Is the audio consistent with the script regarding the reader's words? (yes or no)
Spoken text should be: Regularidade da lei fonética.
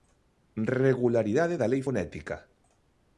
yes